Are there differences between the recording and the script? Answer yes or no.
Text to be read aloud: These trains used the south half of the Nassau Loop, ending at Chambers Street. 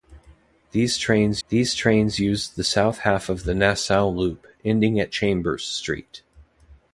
yes